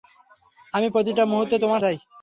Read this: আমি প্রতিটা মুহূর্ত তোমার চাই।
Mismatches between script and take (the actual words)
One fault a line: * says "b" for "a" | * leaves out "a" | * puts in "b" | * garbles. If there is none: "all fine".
all fine